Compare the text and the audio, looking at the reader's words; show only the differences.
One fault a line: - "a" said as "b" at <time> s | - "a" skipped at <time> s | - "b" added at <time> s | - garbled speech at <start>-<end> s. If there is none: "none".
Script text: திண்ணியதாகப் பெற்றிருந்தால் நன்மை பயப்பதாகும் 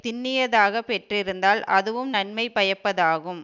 - "அதுவும்" added at 1.6 s